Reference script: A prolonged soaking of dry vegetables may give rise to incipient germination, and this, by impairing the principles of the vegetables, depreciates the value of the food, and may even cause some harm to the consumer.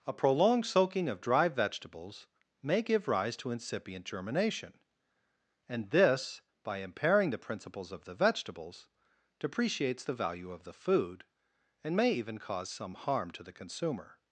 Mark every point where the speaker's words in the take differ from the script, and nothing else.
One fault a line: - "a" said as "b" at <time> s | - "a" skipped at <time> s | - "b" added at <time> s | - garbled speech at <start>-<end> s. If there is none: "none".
none